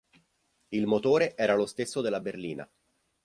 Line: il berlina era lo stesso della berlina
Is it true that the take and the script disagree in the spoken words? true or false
true